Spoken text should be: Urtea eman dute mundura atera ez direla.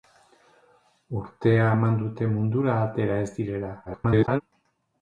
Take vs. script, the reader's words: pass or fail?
fail